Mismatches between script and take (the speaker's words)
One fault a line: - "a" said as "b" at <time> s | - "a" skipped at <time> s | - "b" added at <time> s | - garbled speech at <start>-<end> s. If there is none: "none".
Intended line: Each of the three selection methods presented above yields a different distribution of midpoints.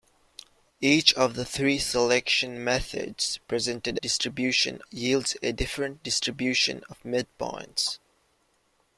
- "above" said as "distribution" at 4.0 s